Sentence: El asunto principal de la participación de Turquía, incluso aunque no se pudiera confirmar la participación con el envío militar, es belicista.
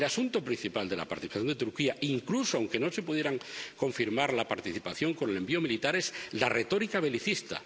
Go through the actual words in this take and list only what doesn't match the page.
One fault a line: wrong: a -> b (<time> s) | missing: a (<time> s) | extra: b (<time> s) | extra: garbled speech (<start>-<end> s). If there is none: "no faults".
extra: la retórica (6.3 s)